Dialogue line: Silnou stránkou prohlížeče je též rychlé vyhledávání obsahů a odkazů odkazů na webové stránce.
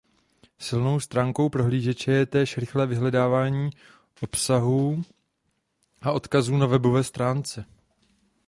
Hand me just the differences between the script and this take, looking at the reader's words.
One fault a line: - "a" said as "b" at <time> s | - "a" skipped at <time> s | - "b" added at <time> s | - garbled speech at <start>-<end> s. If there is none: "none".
- "odkazů" skipped at 6.6 s